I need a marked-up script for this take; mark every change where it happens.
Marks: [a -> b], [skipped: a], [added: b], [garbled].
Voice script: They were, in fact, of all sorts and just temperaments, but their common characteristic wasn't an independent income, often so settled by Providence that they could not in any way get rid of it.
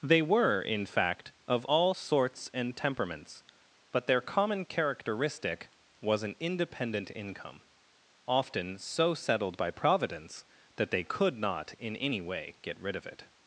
They were, in fact, of all sorts and [skipped: just] temperaments, but their common characteristic [wasn't -> was] an independent income, often so settled by Providence that they could not in any way get rid of it.